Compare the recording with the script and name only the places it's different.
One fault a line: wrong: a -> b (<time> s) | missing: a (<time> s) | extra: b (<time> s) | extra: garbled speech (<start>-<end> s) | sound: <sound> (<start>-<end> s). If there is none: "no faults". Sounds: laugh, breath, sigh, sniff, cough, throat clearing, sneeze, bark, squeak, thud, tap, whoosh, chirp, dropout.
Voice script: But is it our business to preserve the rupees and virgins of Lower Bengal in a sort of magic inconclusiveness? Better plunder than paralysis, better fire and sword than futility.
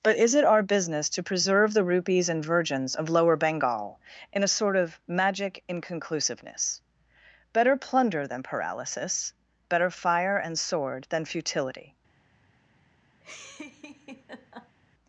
sound: laugh (13.2-14.8 s)